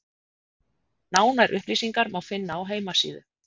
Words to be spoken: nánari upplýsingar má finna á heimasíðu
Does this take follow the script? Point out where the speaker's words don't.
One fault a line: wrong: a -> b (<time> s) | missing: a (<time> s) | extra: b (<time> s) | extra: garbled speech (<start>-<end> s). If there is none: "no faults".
no faults